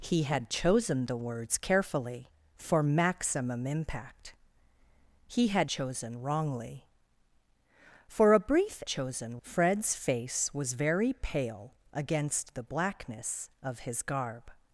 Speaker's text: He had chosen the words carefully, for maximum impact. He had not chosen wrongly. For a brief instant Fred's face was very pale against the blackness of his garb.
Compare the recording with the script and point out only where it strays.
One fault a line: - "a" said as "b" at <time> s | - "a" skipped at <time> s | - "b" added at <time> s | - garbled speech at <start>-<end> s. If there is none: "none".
- "not" skipped at 5.7 s
- "instant" said as "chosen" at 8.8 s